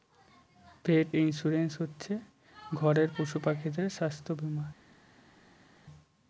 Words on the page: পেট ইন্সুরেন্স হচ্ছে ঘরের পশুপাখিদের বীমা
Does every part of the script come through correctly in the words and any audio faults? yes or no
no